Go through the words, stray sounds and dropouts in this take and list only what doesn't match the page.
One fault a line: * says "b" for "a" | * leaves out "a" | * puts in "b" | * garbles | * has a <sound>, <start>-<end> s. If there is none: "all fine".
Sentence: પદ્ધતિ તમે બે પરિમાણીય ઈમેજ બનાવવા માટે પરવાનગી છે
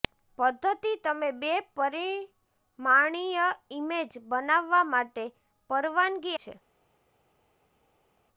all fine